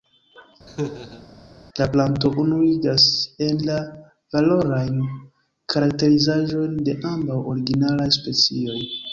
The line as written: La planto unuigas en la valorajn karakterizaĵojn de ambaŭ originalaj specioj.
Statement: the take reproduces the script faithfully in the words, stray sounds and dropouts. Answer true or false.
false